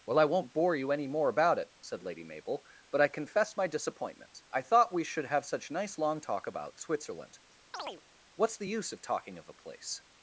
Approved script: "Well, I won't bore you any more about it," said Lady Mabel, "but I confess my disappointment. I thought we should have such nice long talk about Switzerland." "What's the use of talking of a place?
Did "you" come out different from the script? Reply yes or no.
no